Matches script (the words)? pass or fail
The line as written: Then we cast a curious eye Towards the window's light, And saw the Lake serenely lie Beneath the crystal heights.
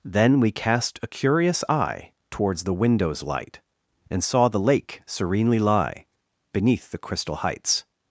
pass